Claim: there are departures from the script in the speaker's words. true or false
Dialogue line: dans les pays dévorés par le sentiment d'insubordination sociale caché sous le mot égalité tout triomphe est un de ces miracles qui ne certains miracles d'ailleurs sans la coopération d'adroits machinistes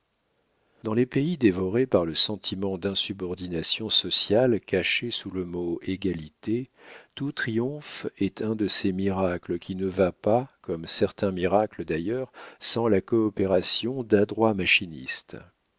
true